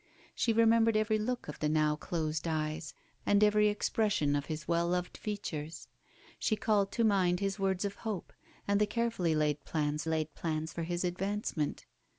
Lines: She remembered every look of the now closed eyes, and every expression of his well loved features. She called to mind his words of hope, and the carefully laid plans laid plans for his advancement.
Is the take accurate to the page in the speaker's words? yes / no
yes